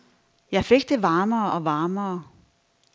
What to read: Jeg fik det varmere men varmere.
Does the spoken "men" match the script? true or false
false